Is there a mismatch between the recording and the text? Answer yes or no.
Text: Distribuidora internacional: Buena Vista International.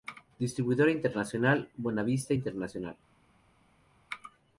no